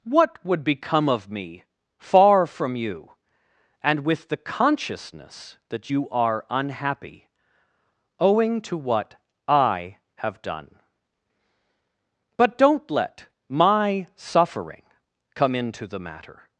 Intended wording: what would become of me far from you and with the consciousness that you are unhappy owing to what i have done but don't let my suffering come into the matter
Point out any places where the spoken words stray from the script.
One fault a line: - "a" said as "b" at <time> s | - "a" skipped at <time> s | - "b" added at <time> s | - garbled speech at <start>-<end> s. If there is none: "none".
none